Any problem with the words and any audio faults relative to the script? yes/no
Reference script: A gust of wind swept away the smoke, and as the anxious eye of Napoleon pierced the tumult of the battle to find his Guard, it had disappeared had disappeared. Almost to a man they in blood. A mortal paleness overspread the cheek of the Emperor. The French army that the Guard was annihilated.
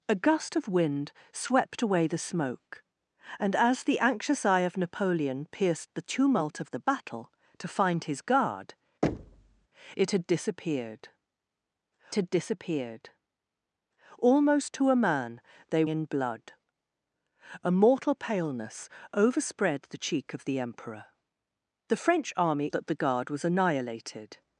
yes